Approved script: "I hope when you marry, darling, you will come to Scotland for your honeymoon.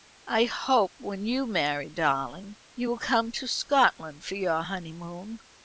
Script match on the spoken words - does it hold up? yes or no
yes